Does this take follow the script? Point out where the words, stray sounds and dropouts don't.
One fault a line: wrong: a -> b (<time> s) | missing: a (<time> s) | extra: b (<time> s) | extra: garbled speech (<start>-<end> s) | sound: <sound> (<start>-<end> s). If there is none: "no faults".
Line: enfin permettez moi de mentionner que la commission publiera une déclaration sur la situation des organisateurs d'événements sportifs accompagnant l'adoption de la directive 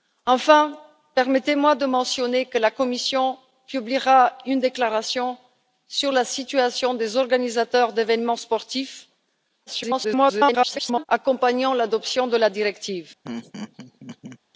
extra: garbled speech (9.7-11.1 s)
sound: laugh (13.2-14.4 s)